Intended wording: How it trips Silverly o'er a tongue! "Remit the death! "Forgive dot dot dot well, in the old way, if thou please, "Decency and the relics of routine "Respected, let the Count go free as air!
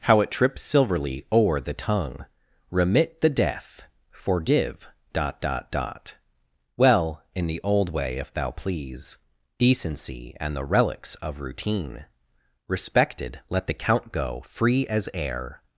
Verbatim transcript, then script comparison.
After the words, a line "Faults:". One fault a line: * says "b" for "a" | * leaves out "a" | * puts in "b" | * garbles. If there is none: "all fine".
How it trips Silverly o'er the tongue! "Remit the death! "Forgive dot dot dot well, in the old way, if thou please, "Decency and the relics of routine "Respected, let the Count go free as air!
Faults:
* says "the" for "a"